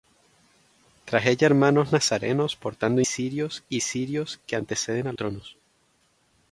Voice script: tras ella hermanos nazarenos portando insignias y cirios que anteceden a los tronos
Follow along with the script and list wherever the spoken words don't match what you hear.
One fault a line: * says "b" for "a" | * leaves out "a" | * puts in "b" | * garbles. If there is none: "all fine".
* says "cirios" for "insignias"
* leaves out "los"